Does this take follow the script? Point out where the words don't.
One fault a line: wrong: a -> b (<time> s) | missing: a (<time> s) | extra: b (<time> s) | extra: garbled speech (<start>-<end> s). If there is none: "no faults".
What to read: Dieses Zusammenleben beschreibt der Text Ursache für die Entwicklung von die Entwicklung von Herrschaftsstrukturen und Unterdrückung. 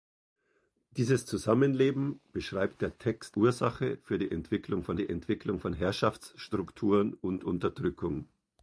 no faults